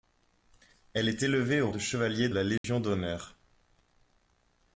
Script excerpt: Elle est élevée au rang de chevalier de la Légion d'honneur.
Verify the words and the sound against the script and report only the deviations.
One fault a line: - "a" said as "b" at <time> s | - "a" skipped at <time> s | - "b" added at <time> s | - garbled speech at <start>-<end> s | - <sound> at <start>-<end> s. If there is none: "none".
- "rang" skipped at 1.7 s
- "de" skipped at 2.3 s
- dropout at 2.6-2.6 s